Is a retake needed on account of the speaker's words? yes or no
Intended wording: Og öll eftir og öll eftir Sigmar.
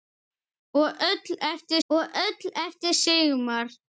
no